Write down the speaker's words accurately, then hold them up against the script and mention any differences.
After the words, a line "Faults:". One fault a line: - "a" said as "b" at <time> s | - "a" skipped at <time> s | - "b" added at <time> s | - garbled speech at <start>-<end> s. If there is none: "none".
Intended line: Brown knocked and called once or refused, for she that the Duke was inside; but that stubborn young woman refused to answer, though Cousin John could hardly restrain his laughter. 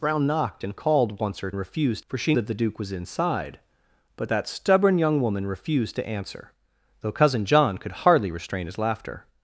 Brown knocked and called once or refused, for she that the Duke was inside; but that stubborn young woman refused to answer, though Cousin John could hardly restrain his laughter.
Faults:
none